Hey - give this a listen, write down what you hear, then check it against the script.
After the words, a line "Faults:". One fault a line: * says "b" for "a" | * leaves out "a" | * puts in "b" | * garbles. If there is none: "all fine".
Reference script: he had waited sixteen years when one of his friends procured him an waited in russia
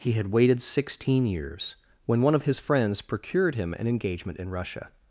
he had waited sixteen years when one of his friends procured him an engagement in russia
Faults:
* says "engagement" for "waited"